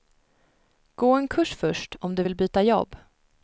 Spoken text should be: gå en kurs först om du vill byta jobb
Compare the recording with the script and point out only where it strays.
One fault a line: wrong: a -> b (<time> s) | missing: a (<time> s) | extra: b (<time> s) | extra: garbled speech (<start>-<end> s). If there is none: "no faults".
no faults